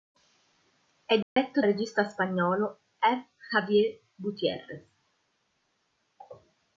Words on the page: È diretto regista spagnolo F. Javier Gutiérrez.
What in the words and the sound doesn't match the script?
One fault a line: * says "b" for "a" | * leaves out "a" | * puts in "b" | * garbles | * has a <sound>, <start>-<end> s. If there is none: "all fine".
* has a dropout, 1.2-1.4 s